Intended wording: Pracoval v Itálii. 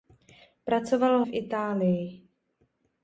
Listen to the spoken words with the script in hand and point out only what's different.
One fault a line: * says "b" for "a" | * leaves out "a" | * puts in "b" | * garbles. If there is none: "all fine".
all fine